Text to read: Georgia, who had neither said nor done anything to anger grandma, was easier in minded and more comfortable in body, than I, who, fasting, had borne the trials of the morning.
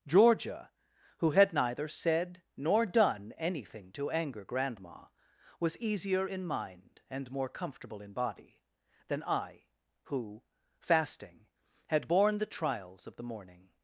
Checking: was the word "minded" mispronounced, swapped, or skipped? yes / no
yes